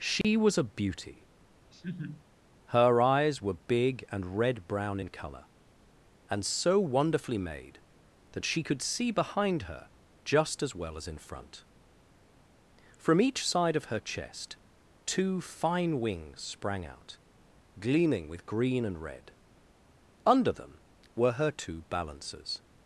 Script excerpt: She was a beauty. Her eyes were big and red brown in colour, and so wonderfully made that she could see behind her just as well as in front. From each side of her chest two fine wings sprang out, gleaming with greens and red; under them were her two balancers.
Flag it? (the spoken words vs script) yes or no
yes